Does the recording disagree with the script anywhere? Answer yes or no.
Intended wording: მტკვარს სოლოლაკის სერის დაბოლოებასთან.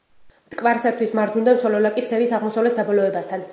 yes